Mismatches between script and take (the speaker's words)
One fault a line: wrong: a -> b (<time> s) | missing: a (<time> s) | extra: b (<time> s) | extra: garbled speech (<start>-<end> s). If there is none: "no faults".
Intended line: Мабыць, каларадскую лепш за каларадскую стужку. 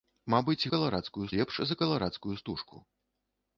no faults